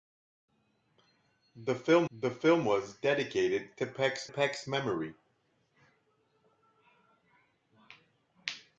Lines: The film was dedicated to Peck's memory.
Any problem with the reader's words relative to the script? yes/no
yes